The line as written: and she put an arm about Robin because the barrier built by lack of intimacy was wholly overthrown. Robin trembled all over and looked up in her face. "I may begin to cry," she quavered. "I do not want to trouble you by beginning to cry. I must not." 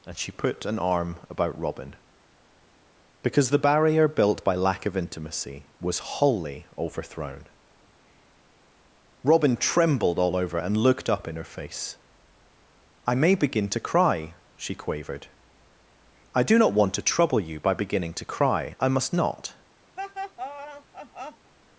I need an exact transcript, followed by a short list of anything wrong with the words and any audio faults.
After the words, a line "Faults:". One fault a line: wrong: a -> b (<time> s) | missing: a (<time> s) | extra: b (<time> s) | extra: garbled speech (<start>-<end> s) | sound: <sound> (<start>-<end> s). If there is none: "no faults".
and she put an arm about Robin because the barrier built by lack of intimacy was wholly overthrown. Robin trembled all over and looked up in her face. "I may begin to cry," she quavered. "I do not want to trouble you by beginning to cry. I must not."
Faults:
sound: laugh (20.0-21.5 s)